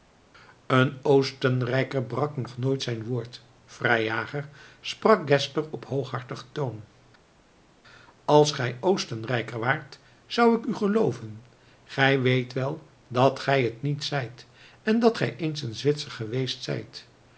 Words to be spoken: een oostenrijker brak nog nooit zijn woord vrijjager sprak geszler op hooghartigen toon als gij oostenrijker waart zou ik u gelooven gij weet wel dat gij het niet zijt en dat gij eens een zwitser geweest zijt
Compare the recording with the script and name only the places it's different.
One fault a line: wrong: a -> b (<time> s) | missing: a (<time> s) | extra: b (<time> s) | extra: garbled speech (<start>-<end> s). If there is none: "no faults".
no faults